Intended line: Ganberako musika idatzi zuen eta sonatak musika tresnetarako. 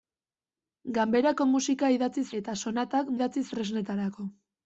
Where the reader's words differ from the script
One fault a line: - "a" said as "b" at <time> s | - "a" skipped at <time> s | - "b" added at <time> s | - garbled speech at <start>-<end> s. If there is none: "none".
- "zuen" skipped at 2.2 s
- "musika" said as "idatzi" at 3.2 s